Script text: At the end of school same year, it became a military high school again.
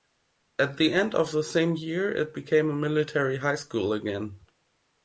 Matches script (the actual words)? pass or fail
fail